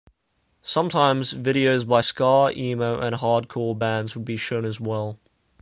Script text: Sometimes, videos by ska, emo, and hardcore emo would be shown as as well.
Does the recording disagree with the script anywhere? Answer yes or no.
yes